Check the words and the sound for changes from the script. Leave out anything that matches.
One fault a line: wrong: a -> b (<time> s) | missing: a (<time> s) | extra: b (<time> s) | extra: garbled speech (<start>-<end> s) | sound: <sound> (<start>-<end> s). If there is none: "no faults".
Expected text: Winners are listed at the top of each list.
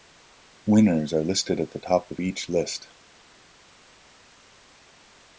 no faults